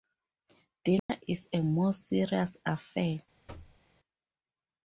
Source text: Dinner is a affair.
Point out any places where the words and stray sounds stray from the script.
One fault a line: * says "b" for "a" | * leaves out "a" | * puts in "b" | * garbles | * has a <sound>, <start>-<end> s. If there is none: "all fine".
* has a dropout, 1.0-1.1 s
* puts in "more serious"
* has a thud, 3.5-3.8 s